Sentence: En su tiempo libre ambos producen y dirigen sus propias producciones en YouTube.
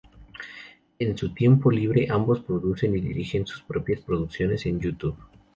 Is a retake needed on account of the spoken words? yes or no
no